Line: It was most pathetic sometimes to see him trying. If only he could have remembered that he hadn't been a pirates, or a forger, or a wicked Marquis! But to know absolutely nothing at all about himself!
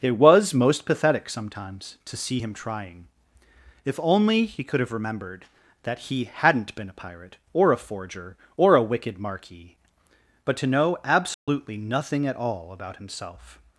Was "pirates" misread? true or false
true